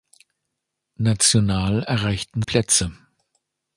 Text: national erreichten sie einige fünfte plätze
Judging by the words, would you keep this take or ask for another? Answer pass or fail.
fail